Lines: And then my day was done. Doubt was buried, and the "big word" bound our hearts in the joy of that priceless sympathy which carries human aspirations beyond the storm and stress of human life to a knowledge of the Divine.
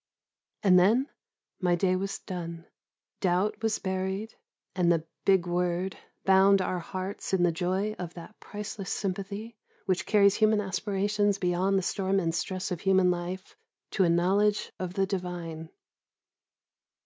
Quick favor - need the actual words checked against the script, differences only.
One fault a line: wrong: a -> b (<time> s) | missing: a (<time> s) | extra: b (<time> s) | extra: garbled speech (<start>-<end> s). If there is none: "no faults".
no faults